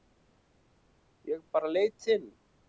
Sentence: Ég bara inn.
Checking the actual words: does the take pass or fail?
fail